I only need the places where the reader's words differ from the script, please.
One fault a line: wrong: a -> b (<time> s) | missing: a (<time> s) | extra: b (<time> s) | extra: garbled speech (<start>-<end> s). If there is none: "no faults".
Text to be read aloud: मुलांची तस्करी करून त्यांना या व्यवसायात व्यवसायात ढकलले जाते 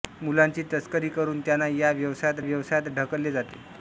no faults